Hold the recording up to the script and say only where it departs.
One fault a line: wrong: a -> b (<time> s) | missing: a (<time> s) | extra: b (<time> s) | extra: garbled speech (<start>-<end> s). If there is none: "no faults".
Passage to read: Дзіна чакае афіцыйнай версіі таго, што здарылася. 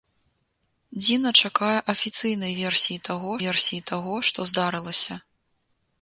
extra: версіі таго (3.5 s)